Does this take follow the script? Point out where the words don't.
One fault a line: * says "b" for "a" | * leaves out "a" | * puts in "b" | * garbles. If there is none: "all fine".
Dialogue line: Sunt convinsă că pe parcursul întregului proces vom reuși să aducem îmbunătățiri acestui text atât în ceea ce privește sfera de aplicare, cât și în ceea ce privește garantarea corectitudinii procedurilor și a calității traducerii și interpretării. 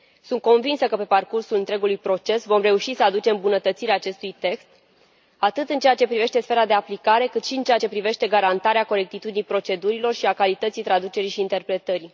all fine